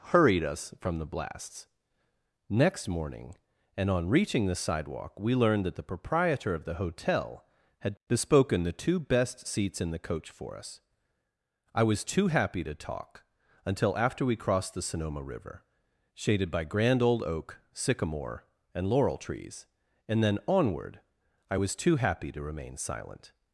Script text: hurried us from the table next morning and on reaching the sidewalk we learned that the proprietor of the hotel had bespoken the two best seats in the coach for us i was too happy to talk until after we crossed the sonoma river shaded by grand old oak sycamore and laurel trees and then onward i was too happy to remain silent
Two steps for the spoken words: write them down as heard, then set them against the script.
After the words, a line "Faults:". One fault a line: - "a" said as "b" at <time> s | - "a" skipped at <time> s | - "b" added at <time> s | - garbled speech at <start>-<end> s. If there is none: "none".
hurried us from the blasts next morning and on reaching the sidewalk we learned that the proprietor of the hotel had bespoken the two best seats in the coach for us i was too happy to talk until after we crossed the sonoma river shaded by grand old oak sycamore and laurel trees and then onward i was too happy to remain silent
Faults:
- "table" said as "blasts" at 1.1 s